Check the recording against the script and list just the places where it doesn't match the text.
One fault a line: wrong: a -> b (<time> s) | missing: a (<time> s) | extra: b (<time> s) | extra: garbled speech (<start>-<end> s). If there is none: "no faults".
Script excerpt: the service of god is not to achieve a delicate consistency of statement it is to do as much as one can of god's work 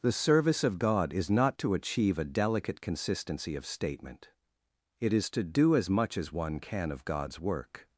no faults